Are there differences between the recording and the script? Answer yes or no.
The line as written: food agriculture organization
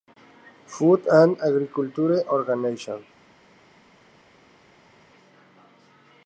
yes